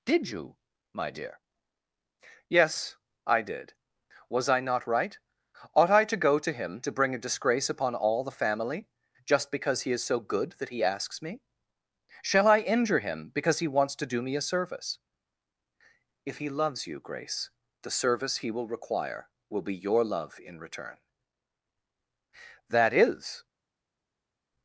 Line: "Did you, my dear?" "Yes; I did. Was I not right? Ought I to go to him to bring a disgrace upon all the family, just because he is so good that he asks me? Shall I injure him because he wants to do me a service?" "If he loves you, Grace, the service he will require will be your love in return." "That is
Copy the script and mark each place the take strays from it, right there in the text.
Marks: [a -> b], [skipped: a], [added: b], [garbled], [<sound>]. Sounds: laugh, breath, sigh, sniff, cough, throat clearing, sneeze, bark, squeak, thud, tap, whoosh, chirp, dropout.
"Did you, my dear?" "Yes; I did. Was I not right? Ought I to go to him to bring a disgrace upon all the family, just because he is so good that he asks me? Shall I injure him because he wants to do me a service?" "If he loves you, Grace, the service he will require will be your love in return." "That is